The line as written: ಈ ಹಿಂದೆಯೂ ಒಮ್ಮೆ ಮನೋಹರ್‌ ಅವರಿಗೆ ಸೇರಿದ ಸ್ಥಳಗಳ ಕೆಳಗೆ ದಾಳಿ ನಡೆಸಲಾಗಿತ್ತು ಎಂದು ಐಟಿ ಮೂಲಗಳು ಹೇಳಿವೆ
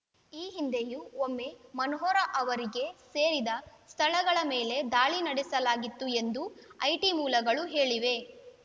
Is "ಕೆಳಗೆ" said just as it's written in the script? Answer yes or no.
no